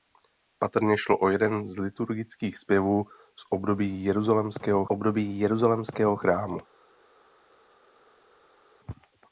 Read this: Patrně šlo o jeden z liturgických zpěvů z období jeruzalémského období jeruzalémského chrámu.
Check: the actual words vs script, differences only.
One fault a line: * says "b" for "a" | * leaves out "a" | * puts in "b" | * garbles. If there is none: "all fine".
all fine